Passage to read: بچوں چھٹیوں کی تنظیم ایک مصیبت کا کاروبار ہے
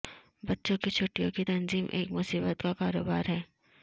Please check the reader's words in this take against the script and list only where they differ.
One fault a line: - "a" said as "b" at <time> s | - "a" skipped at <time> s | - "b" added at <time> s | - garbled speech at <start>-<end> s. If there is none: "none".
- "کی" added at 0.8 s